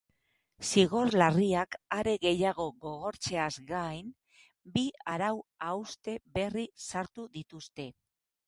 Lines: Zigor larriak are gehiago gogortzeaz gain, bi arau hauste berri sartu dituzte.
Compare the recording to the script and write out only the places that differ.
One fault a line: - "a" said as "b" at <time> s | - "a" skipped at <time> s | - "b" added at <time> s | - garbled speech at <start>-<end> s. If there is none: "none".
none